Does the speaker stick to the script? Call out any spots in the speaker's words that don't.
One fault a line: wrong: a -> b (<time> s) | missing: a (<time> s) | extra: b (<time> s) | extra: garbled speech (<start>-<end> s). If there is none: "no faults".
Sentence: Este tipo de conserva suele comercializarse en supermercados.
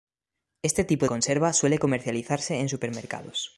missing: de (1.1 s)